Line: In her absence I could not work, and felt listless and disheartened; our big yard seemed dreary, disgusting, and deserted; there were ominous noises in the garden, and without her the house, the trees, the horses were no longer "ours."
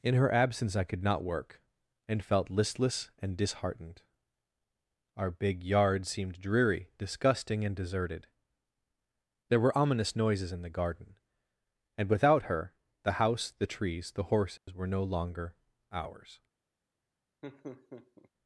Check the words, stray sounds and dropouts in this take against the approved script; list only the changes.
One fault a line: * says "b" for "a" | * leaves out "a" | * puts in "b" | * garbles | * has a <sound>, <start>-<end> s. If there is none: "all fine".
* has a dropout, 14.6-14.7 s
* has a laugh, 17.4-18.3 s